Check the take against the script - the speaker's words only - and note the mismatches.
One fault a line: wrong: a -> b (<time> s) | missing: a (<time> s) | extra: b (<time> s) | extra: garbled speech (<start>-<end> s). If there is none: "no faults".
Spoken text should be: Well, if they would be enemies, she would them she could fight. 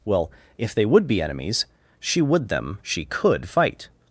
no faults